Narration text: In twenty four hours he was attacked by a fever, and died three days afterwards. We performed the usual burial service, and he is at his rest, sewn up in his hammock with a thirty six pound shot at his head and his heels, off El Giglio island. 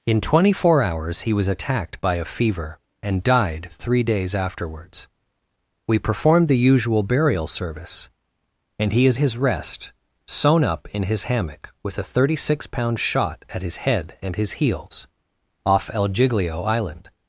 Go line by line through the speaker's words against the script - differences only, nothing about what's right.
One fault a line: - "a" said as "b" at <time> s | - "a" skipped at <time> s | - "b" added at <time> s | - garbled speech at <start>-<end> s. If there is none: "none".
- "at" skipped at 9.2 s